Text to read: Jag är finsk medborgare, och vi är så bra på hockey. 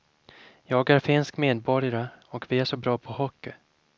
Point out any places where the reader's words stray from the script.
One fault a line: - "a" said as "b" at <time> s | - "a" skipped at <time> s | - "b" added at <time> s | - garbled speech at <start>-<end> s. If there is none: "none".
none